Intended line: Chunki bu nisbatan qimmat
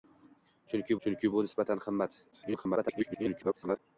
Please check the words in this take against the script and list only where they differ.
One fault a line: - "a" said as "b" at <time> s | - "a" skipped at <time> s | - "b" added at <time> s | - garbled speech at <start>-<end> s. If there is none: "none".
- "chunki" added at 1.1 s
- garbled speech at 2.3-3.8 s